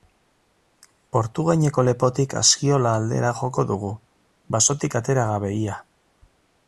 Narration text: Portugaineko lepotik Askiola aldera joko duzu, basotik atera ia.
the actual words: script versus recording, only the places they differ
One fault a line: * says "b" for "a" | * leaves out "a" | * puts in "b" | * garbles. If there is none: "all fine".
* says "dugu" for "duzu"
* puts in "gabe"